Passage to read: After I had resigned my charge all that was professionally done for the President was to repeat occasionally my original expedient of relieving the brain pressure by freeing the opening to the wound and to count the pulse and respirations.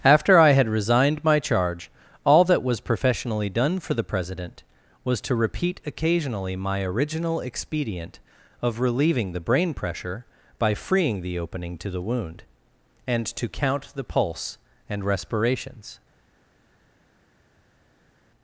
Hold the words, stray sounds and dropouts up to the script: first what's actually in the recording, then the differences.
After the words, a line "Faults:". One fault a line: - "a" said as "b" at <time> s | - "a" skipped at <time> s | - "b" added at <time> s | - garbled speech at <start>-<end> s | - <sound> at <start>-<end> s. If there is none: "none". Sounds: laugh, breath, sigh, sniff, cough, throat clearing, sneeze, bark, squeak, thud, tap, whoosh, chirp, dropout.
After I had resigned my charge all that was professionally done for the President was to repeat occasionally my original expedient of relieving the brain pressure by freeing the opening to the wound and to count the pulse and respirations.
Faults:
none